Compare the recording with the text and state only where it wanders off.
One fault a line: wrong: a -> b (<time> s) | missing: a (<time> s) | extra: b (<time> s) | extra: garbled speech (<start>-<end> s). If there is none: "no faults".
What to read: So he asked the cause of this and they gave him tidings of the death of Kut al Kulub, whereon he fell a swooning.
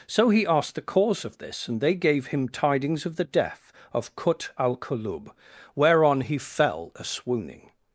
no faults